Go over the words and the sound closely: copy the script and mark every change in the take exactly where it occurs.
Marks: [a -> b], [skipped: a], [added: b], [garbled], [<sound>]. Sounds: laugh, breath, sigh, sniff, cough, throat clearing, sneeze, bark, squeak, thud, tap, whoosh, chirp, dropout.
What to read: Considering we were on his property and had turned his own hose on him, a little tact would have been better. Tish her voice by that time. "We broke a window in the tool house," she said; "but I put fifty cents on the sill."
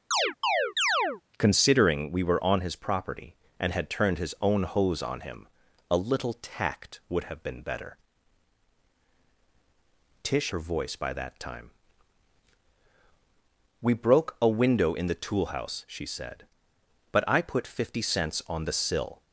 [chirp] Considering we were on his property and had turned his own hose on him, a little tact would have been better. Tish her voice by that time. "We broke a window in the tool house," she said; "but I put fifty cents on the sill."